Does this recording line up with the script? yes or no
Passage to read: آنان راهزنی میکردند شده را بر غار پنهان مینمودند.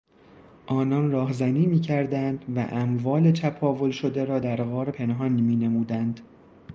no